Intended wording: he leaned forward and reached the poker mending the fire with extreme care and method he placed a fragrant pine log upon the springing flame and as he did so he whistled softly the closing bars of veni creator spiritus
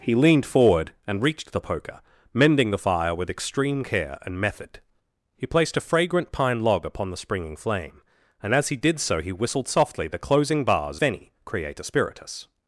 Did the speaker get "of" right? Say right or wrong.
wrong